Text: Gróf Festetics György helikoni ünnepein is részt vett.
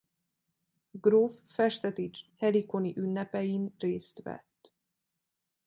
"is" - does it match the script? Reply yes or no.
no